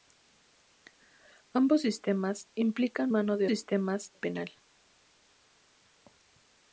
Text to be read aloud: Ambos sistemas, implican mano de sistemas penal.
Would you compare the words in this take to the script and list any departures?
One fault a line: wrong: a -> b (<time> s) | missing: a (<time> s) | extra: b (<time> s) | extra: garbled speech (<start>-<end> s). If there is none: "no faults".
no faults